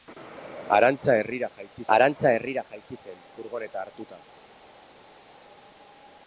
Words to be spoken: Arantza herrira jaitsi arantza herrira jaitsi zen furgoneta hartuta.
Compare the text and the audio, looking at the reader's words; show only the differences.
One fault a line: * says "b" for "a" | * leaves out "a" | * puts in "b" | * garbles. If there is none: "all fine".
all fine